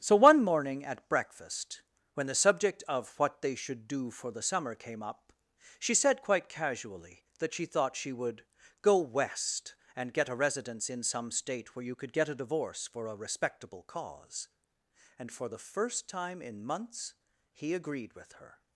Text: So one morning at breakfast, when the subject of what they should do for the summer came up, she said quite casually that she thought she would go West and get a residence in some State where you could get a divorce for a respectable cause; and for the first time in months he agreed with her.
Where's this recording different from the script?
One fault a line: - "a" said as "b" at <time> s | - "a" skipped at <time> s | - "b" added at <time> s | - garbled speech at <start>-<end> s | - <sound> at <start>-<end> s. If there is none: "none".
none